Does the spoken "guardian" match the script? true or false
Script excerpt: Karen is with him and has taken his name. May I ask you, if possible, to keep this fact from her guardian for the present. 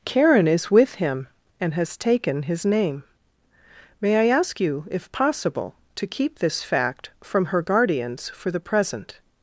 false